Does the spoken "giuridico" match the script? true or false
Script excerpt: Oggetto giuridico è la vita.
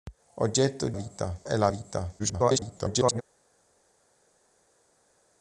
false